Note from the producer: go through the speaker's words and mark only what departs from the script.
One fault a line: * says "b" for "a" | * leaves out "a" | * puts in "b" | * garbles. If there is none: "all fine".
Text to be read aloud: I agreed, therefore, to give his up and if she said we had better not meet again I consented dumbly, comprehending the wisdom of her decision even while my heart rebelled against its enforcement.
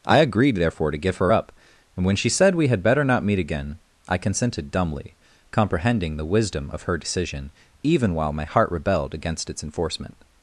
* says "her" for "his"
* says "when" for "if"